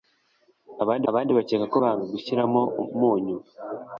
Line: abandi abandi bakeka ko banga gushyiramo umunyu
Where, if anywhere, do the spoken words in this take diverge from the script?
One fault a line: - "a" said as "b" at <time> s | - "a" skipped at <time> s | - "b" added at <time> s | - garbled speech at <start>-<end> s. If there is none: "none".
none